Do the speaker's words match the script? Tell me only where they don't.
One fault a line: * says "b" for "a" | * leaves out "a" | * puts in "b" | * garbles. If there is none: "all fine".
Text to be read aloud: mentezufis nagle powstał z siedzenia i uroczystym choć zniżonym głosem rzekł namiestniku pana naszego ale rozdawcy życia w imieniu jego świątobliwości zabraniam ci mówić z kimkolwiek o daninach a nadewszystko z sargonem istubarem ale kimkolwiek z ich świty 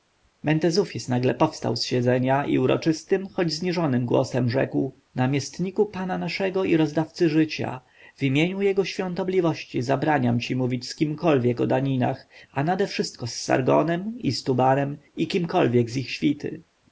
* says "i" for "ale"
* says "i" for "ale"